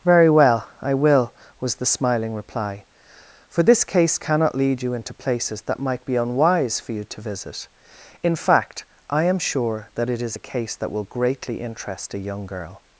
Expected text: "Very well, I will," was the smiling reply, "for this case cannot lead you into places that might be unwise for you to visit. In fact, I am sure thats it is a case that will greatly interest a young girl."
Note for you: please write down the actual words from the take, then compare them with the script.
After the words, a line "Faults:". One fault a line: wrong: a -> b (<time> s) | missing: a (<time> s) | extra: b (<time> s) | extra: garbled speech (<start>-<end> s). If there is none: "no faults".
"Very well, I will," was the smiling reply, "for this case cannot lead you into places that might be unwise for you to visit. In fact, I am sure that it is a case that will greatly interest a young girl."
Faults:
wrong: thats -> that (9.9 s)